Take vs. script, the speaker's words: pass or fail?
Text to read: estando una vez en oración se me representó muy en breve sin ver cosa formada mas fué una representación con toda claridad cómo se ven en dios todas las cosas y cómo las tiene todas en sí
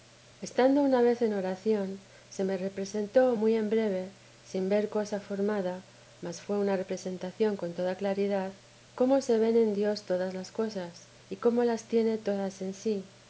pass